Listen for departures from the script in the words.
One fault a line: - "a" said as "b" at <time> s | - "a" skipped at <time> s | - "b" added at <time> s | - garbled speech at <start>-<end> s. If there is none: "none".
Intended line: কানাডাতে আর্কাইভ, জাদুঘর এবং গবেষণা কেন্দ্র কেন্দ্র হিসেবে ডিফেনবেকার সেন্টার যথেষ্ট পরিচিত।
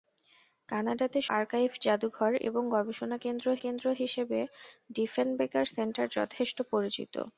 none